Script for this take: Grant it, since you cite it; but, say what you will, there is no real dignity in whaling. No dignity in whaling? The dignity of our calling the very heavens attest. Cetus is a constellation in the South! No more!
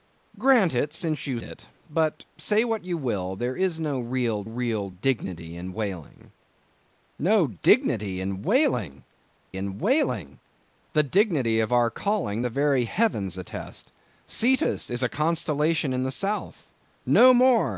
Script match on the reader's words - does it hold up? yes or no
no